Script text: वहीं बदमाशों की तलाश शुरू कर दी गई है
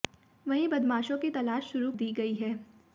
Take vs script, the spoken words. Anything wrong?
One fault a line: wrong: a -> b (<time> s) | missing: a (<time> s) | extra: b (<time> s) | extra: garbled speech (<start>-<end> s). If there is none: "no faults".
missing: कर (1.9 s)